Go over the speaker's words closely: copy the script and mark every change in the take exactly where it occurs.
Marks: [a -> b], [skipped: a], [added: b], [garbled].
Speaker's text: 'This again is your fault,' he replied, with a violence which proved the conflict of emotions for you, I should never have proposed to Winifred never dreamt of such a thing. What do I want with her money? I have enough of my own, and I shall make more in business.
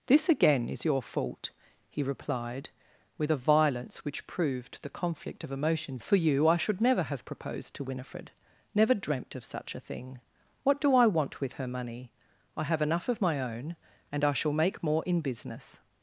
'This again is your fault,' he replied, with a violence which proved the conflict of emotions for you, I should never have proposed to Winifred never dreamt of such a thing. What do I want with her money? I have enough of my own, and I shall make more in business.